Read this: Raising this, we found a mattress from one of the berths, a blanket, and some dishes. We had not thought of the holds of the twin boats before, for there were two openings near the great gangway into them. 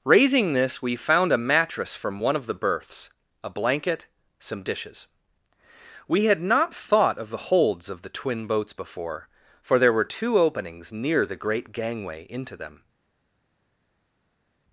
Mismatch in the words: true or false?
true